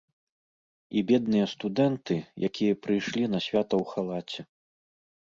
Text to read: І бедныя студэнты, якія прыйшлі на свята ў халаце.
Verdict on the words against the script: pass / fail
pass